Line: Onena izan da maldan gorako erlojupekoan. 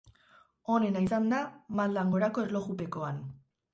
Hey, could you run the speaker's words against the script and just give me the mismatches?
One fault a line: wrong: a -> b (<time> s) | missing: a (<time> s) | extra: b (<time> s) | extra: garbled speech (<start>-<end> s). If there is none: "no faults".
no faults